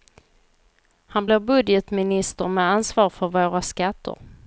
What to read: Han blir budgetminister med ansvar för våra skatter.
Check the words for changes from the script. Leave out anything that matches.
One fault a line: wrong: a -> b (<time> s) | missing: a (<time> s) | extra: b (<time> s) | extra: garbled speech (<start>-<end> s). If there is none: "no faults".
no faults